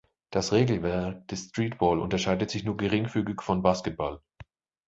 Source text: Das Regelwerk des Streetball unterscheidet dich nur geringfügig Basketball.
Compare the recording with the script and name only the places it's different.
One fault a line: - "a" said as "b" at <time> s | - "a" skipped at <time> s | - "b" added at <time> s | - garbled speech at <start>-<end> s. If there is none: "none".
- "dich" said as "sich" at 2.5 s
- "von" added at 3.4 s